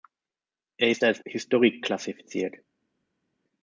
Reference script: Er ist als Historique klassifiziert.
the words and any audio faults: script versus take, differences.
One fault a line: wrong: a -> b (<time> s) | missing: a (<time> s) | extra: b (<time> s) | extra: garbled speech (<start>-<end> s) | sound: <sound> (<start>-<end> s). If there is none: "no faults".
no faults